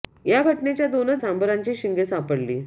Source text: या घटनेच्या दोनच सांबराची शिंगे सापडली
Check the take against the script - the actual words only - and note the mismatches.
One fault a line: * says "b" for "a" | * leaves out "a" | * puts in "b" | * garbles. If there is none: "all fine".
all fine